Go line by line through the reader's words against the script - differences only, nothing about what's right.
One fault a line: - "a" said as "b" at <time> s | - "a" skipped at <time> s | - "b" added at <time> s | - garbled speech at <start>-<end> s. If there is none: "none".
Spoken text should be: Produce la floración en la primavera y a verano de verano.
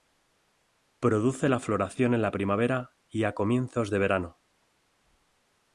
- "verano" said as "comienzos" at 3.3 s